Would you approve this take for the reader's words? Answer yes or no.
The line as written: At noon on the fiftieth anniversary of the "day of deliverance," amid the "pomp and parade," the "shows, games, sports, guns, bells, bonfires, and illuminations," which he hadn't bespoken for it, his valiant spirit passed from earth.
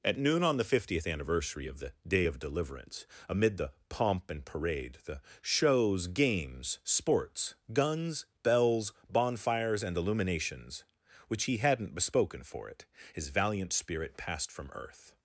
yes